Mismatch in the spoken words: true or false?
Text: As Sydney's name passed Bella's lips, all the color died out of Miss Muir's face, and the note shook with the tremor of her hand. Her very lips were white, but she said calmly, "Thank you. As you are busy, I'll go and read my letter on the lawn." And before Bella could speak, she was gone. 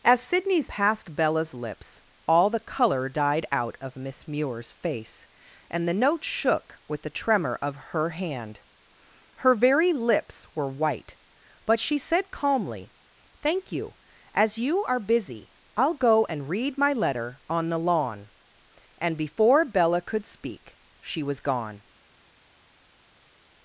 true